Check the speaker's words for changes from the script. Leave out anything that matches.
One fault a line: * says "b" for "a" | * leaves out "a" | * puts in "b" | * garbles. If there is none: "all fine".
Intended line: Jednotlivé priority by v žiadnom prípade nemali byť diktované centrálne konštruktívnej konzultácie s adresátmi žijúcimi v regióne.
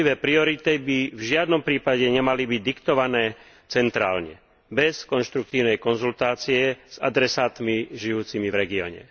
* puts in "bez"